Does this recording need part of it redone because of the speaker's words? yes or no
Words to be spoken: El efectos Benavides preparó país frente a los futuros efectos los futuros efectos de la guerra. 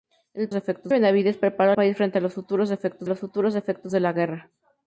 no